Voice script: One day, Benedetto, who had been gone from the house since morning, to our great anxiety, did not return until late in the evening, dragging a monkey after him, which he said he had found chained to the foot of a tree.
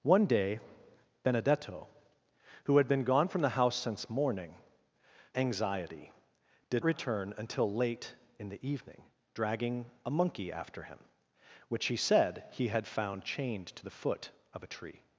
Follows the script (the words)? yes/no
no